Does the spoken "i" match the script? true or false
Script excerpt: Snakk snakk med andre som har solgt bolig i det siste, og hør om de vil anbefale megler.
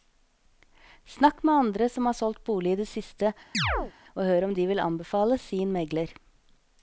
true